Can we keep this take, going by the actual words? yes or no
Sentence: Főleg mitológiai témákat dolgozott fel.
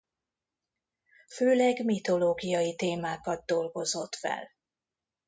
yes